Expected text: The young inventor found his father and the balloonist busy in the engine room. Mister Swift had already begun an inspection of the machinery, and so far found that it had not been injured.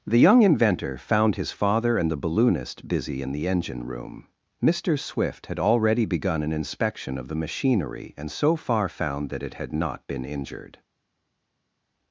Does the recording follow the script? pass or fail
pass